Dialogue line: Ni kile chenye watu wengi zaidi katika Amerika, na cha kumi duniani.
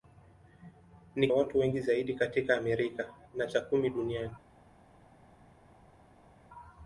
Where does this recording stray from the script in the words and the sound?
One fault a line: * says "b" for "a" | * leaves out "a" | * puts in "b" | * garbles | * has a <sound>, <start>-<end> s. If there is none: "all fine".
* leaves out "kile chenye"